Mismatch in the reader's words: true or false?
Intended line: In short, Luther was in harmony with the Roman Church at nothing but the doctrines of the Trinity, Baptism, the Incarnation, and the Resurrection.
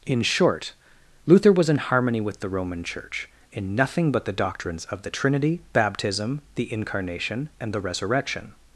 true